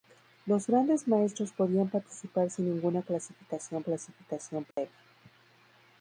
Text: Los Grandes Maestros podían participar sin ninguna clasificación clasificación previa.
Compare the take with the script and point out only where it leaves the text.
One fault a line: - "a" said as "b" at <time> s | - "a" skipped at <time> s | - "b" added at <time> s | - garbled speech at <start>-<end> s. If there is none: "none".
none